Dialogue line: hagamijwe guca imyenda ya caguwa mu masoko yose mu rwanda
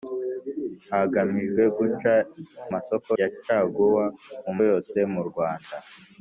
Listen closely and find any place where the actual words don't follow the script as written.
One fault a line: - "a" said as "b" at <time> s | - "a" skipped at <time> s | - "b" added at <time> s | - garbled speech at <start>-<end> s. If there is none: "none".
- "imyenda" said as "masoko" at 2.7 s
- "masoko" skipped at 4.5 s